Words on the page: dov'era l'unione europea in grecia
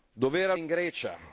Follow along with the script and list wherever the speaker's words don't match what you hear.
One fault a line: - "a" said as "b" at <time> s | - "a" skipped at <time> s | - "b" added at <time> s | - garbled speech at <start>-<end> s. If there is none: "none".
- "l'unione europea" skipped at 0.5 s